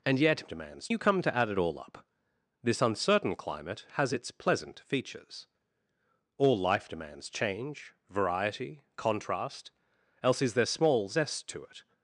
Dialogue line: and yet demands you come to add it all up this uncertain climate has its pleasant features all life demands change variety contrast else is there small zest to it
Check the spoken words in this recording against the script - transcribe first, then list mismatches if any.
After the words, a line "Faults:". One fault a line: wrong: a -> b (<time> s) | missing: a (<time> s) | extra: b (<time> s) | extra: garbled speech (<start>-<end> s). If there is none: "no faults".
and yet demands you come to add it all up this uncertain climate has its pleasant features all life demands change variety contrast else is there small zest to it
Faults:
no faults